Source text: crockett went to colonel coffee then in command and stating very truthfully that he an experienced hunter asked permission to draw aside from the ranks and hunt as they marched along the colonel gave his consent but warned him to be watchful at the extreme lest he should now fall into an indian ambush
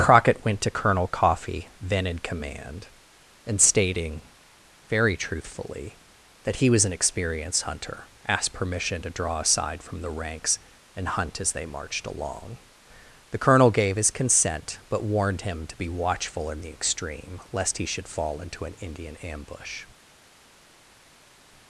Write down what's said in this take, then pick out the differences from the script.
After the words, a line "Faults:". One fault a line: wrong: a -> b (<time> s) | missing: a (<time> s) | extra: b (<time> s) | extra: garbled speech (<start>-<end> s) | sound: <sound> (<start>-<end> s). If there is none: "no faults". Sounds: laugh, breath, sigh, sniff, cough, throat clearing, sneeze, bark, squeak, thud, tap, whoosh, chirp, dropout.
crockett went to colonel coffee then in command and stating very truthfully that he was an experienced hunter asked permission to draw aside from the ranks and hunt as they marched along the colonel gave his consent but warned him to be watchful in the extreme lest he should fall into an indian ambush
Faults:
extra: was (6.7 s)
wrong: at -> in (16.5 s)
missing: now (18.1 s)